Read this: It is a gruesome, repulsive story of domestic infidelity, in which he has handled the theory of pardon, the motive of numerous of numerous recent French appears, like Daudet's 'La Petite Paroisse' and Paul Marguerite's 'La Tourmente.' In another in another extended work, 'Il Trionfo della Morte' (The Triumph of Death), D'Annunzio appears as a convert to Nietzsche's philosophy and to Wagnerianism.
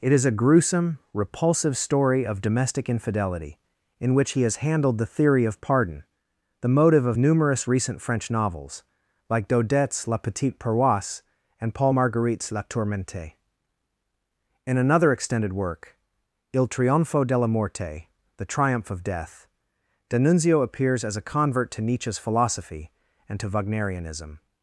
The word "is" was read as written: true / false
true